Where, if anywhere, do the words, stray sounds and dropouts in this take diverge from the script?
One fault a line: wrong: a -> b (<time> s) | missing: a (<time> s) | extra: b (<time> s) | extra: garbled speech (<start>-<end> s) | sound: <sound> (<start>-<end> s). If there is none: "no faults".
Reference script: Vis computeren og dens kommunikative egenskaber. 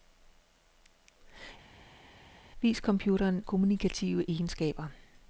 missing: og dens (3.5 s)